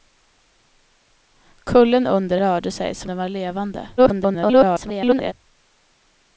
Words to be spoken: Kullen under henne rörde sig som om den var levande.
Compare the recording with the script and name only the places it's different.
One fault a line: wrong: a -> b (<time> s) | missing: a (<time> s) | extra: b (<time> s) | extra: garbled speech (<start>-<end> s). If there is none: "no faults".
missing: henne (2.4 s)
missing: om (3.1 s)
extra: garbled speech (4.0-5.3 s)